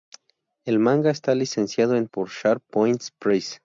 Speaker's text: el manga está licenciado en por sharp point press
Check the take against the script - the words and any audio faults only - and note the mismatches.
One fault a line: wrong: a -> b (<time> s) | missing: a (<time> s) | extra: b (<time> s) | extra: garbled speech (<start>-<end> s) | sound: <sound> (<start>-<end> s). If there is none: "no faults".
no faults